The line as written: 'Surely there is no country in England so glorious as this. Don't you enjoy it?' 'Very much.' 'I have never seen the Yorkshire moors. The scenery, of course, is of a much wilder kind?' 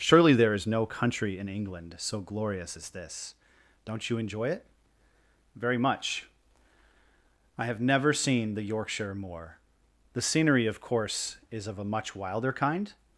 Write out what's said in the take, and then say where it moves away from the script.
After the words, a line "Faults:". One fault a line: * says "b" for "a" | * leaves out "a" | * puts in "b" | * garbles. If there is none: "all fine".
'Surely there is no country in England so glorious as this. Don't you enjoy it?' 'Very much.' 'I have never seen the Yorkshire moor. The scenery, of course, is of a much wilder kind?'
Faults:
* says "moor" for "moors"